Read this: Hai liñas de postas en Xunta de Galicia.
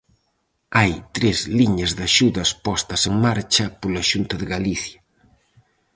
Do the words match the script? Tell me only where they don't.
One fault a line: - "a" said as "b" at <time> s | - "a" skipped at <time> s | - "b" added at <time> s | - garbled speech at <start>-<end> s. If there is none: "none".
- "tres" added at 1.1 s
- "axudas" added at 2.1 s
- "marcha pola" added at 3.2 s